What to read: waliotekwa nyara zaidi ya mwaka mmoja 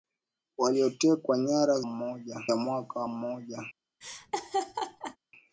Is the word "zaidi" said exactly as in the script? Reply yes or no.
no